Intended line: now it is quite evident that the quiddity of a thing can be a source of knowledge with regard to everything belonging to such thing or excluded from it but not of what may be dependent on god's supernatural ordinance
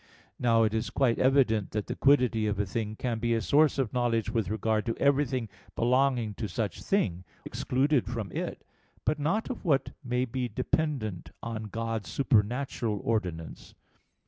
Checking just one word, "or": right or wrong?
wrong